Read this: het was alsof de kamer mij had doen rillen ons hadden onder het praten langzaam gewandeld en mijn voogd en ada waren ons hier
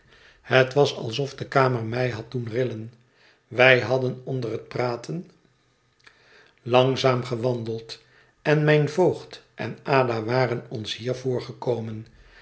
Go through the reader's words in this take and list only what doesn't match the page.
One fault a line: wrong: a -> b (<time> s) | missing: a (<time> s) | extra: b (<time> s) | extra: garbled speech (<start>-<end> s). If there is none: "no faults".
wrong: ons -> wij (3.5 s)